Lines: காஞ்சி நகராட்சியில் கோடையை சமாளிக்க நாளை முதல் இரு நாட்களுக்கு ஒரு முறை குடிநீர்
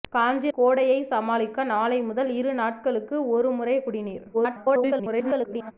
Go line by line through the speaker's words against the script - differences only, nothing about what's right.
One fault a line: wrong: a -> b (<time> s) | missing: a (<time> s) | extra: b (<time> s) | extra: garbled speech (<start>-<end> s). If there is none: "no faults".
missing: நகராட்சியில் (0.5 s)
extra: garbled speech (4.3-5.7 s)